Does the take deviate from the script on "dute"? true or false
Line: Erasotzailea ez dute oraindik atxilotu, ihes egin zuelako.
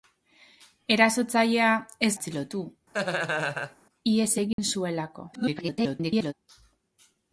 true